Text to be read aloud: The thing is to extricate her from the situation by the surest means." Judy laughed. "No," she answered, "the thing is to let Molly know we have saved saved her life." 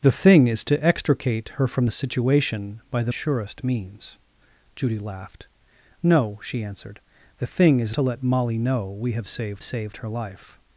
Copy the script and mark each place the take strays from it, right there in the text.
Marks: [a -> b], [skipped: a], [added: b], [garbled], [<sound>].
The thing is to extricate her from the situation by the surest means." Judy laughed. "No," she answered, "the thing is to let Molly know we have saved saved her life."